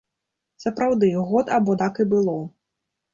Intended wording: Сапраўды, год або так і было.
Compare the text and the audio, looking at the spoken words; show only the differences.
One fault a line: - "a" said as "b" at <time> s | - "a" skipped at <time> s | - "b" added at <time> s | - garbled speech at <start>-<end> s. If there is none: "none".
none